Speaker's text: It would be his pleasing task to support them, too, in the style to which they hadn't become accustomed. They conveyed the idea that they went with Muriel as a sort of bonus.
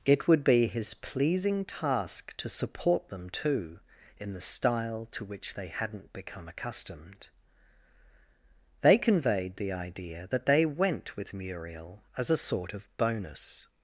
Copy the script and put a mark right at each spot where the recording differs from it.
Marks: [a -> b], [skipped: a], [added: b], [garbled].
It would be his pleasing task to support them, too, in the style to which they hadn't become accustomed. They conveyed the idea that they went with Muriel as a sort of bonus.